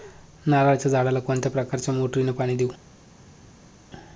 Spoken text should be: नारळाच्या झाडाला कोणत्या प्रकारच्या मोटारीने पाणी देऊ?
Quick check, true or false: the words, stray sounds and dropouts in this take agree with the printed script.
true